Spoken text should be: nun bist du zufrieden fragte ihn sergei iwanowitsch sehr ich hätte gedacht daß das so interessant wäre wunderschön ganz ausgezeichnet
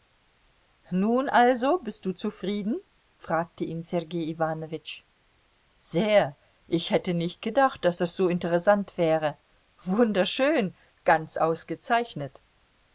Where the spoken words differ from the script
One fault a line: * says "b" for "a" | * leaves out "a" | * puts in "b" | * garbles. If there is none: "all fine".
* puts in "also"
* puts in "nicht"